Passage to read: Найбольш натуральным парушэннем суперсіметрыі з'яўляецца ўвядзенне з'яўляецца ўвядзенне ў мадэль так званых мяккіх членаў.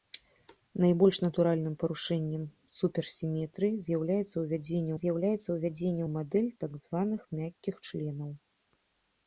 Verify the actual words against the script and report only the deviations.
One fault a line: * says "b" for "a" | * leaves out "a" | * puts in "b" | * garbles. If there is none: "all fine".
all fine